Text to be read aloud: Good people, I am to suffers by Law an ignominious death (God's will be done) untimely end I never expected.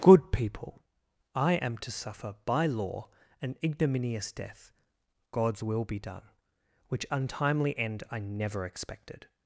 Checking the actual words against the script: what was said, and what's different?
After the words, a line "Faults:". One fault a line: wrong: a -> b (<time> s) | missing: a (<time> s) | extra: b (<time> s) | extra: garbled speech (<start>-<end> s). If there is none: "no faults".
Good people, I am to suffer by Law an ignominious death (God's will be done) which untimely end I never expected.
Faults:
wrong: suffers -> suffer (1.9 s)
extra: which (6.9 s)